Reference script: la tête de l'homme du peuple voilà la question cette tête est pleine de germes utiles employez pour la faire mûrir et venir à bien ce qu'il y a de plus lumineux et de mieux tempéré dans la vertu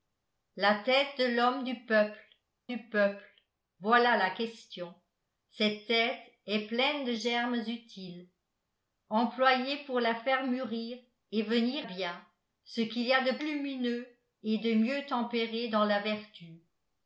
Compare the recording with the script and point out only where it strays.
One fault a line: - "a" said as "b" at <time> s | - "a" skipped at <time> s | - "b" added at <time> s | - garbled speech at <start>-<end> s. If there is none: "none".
- "du peuple" added at 2.7 s
- "à" skipped at 11.9 s
- "plus" skipped at 13.4 s